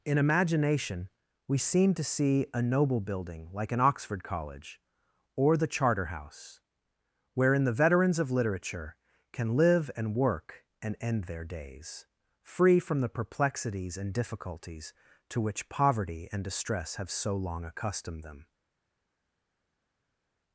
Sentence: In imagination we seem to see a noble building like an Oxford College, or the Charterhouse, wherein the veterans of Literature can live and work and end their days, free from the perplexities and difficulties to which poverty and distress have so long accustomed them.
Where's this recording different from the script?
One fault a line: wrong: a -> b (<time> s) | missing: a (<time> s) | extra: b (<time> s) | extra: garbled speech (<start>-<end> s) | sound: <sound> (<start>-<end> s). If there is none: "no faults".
no faults